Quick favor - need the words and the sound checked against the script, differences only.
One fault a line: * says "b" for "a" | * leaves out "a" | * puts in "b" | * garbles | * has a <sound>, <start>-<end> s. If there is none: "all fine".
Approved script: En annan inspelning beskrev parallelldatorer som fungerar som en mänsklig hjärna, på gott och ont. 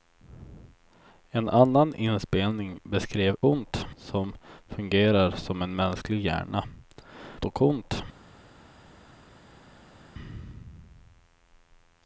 * says "ont" for "parallelldatorer"
* leaves out "på gott"